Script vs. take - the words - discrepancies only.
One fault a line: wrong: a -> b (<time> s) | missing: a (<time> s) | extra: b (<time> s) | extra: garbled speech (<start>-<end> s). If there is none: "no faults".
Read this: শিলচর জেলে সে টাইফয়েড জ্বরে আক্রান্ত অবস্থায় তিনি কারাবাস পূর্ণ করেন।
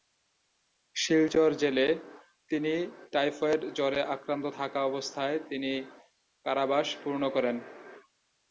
wrong: সে -> তিনি (2.5 s)
extra: থাকা (4.6 s)